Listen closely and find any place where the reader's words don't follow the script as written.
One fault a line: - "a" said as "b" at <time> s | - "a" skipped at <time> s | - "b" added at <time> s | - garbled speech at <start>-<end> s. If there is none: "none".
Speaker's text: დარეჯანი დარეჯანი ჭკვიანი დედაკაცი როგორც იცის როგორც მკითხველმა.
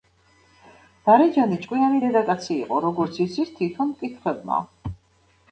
- "დარეჯანი" skipped at 1.6 s
- "იყო" added at 2.7 s
- "როგორც" said as "თითონ" at 3.6 s